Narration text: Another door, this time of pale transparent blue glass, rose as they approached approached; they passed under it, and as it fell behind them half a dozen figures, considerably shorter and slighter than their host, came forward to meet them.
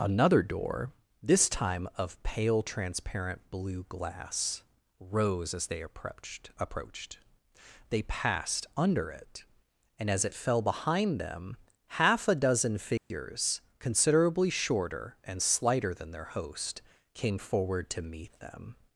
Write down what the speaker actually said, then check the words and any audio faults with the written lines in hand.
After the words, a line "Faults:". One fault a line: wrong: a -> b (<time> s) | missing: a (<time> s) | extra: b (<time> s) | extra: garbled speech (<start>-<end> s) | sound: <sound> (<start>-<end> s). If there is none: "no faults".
Another door, this time of pale transparent blue glass, rose as they approached approached; they passed under it, and as it fell behind them half a dozen figures, considerably shorter and slighter than their host, came forward to meet them.
Faults:
sound: dropout (13.0-13.1 s)